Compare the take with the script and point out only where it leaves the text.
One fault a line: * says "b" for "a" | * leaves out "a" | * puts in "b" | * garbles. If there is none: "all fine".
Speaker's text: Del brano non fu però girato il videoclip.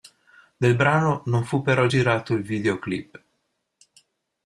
all fine